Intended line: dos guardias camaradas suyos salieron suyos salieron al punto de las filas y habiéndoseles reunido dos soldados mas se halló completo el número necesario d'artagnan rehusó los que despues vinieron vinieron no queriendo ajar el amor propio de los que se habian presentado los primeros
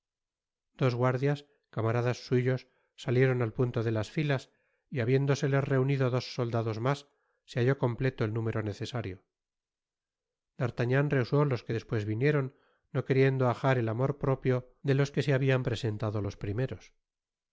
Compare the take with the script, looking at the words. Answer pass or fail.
fail